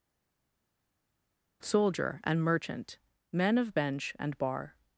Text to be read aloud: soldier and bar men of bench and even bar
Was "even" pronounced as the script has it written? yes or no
no